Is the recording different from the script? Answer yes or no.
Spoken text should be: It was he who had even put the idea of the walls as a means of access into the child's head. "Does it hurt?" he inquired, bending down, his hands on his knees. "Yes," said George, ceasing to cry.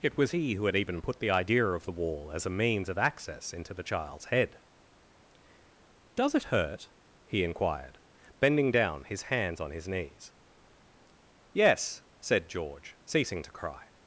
yes